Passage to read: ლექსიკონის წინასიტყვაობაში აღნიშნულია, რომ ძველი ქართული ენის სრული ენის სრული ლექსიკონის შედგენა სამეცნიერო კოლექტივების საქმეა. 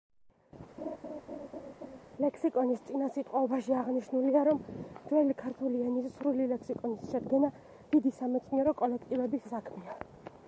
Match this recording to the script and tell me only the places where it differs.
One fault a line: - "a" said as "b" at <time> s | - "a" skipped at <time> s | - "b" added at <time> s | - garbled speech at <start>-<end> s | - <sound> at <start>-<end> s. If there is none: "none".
- laugh at 0.8-2.0 s
- "ენის სრული" skipped at 6.5 s
- "დიდი" added at 7.9 s